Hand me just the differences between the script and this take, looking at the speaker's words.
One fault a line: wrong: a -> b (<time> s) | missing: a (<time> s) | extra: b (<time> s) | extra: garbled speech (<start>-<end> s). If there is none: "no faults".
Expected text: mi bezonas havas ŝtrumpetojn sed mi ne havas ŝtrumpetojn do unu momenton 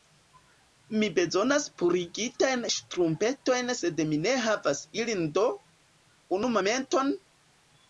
wrong: havas -> purigitajn (1.8 s)
wrong: ŝtrumpetojn -> ilin (5.1 s)